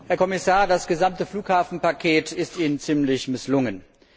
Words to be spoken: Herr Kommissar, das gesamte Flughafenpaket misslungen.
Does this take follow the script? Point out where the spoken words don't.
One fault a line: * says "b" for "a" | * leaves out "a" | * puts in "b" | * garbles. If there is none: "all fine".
* puts in "ist Ihnen ziemlich"